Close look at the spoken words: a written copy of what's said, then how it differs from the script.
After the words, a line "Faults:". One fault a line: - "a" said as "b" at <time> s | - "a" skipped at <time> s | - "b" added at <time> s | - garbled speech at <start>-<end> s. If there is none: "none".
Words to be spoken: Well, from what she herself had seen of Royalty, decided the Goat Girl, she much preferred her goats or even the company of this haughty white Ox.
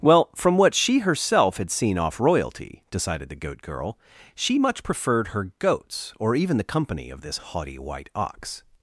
Well, from what she herself had seen off Royalty, decided the Goat Girl, she much preferred her goats or even the company of this haughty white Ox.
Faults:
- "of" said as "off" at 2.0 s